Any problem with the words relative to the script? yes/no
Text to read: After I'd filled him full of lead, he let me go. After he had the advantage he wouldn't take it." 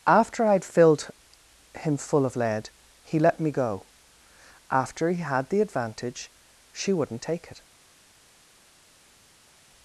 yes